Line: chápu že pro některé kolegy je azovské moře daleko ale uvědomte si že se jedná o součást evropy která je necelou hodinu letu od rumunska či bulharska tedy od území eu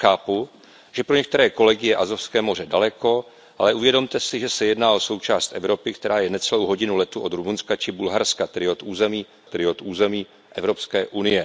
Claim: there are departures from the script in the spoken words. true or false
true